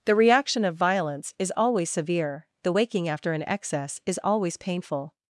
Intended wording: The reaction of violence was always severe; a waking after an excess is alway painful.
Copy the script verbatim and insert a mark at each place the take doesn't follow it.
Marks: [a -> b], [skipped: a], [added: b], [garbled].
The reaction of violence [was -> is] always severe; [a -> the] waking after an excess is [alway -> always] painful.